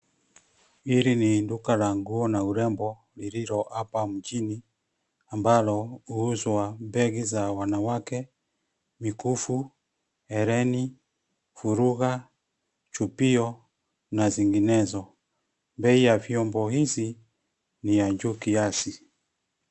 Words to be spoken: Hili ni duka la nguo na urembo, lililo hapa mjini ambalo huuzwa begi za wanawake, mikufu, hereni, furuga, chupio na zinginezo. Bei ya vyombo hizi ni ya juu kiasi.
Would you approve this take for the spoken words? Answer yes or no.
yes